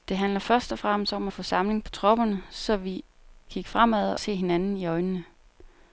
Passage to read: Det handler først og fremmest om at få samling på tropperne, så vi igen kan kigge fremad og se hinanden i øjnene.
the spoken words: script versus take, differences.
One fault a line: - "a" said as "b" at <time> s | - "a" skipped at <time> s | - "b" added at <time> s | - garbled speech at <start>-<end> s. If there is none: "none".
- "igen kan" skipped at 3.0 s
- "og" skipped at 4.2 s